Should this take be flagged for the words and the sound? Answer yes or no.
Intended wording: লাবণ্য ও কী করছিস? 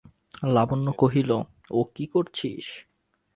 yes